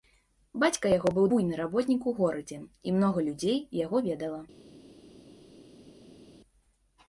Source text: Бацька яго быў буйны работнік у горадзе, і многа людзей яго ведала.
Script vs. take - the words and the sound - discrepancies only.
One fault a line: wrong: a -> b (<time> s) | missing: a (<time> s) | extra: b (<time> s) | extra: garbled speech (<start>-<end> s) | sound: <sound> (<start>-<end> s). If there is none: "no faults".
no faults